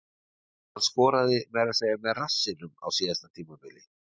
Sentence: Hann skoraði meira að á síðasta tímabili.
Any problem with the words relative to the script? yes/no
yes